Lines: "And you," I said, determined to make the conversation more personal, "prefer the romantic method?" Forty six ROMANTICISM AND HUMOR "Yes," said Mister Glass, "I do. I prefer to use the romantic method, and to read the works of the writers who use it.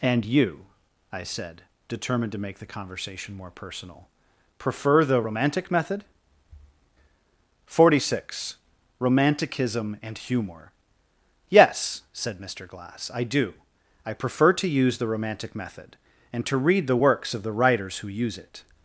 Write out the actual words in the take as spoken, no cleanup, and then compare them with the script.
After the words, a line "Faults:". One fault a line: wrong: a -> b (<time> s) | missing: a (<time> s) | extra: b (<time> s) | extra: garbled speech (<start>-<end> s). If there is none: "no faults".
"And you," I said, determined to make the conversation more personal, "prefer the romantic method?" Forty six ROMANTICISM AND HUMOR "Yes," said Mister Glass, "I do. I prefer to use the romantic method, and to read the works of the writers who use it.
Faults:
no faults